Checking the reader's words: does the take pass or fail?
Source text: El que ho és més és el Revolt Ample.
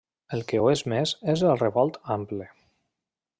pass